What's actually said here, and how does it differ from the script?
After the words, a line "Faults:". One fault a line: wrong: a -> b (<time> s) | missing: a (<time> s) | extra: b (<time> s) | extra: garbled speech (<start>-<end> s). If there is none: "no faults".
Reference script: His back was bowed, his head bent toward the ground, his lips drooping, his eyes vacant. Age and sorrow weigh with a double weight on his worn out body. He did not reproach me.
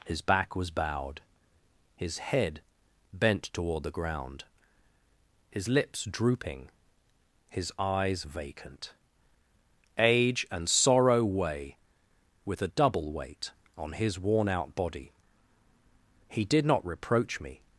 His back was bowed, his head bent toward the ground, his lips drooping, his eyes vacant. Age and sorrow weigh with a double weight on his worn out body. He did not reproach me.
Faults:
no faults